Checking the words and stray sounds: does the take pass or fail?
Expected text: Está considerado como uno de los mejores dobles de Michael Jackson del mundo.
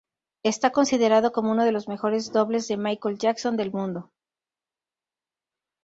pass